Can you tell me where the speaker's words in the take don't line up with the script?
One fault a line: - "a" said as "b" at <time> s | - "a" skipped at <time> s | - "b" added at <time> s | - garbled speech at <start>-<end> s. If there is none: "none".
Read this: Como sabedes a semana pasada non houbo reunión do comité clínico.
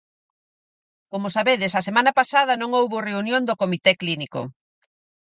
none